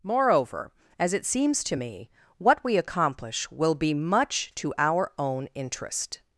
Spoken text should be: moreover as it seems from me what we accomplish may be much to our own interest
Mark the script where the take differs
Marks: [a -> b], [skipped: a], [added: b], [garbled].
moreover as it seems [from -> to] me what we accomplish [may -> will] be much to our own interest